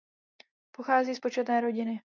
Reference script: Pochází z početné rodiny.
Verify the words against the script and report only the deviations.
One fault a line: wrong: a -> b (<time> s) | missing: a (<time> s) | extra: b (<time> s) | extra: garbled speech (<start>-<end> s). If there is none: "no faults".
no faults